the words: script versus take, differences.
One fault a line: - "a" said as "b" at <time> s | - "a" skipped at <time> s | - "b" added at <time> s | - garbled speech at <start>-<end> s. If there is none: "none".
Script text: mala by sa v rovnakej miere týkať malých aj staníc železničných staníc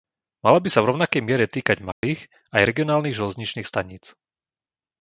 - "staníc" said as "regionálnych" at 2.6 s